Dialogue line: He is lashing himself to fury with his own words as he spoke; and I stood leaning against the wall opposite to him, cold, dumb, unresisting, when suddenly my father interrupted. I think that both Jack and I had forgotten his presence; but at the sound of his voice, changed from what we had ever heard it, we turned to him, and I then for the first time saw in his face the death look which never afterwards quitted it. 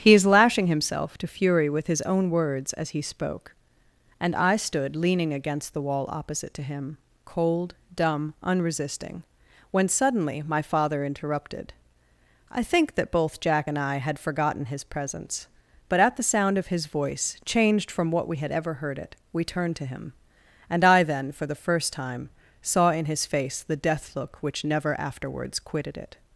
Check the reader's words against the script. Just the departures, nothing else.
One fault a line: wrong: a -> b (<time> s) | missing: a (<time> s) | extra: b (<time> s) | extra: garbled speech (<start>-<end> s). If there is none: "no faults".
no faults